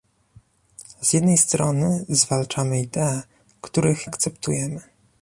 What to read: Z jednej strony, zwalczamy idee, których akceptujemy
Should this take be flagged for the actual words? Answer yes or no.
no